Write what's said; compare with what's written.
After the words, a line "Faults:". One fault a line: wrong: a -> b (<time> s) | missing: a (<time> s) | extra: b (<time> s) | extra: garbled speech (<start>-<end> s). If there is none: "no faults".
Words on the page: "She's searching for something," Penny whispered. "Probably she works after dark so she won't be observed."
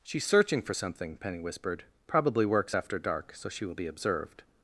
"She's searching for something," Penny whispered. "Probably works after dark so she will be observed."
Faults:
missing: she (2.5 s)
wrong: won't -> will (3.7 s)